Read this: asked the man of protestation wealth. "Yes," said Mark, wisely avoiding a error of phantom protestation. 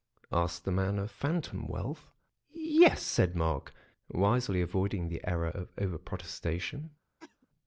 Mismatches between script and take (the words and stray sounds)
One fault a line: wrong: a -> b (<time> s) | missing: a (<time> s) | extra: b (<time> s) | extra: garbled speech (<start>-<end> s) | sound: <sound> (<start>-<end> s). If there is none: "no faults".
wrong: protestation -> phantom (1.1 s)
wrong: a -> the (5.1 s)
wrong: phantom -> over (5.8 s)
sound: cough (7.2-7.5 s)